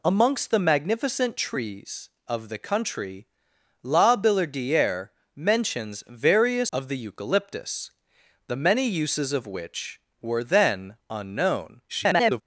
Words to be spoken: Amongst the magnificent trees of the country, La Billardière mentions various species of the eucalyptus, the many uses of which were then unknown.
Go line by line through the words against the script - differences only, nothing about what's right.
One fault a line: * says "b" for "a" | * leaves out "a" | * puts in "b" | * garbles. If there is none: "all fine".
* leaves out "species"
* garbles